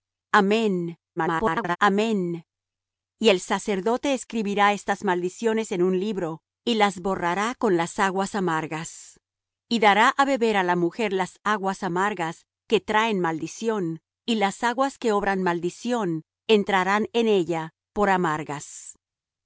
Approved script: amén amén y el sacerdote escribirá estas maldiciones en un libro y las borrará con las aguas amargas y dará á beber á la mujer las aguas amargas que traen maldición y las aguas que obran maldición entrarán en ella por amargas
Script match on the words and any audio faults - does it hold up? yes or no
no